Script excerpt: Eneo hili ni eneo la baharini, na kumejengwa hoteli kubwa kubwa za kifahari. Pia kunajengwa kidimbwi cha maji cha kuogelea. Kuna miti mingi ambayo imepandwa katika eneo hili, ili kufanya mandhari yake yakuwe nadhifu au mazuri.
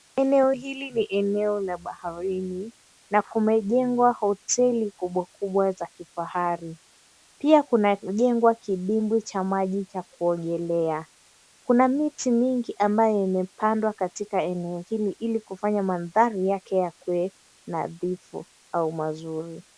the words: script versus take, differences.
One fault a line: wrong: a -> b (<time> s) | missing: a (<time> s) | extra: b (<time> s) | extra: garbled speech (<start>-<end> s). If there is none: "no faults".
no faults